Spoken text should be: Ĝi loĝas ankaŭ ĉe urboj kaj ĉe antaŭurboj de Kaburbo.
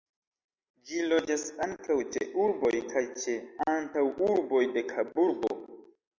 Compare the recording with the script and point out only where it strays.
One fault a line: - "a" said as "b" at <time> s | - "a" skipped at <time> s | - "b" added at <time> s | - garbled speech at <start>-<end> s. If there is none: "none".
none